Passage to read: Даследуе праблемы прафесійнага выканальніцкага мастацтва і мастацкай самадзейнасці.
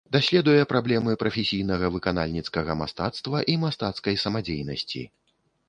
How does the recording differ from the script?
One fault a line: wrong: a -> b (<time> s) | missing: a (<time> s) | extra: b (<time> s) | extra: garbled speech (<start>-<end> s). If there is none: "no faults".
no faults